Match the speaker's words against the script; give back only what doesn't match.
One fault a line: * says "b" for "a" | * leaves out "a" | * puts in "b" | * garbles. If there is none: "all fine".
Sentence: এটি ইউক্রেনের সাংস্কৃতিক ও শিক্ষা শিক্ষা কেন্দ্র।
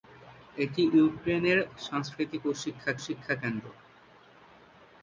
all fine